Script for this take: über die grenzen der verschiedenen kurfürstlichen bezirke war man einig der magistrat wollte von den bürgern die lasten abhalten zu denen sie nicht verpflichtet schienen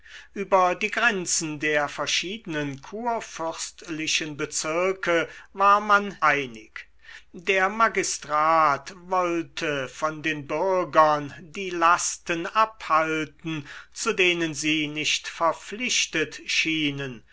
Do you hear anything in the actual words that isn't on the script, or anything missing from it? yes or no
no